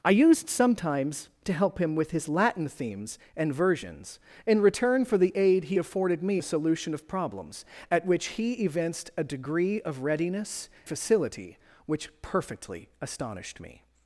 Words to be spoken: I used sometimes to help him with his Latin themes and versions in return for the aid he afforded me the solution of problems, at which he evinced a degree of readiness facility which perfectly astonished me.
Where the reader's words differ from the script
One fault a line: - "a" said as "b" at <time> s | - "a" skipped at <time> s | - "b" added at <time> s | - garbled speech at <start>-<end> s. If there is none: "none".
none